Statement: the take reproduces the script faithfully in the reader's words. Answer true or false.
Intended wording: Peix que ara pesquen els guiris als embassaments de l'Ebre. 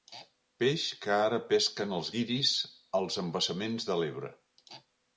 true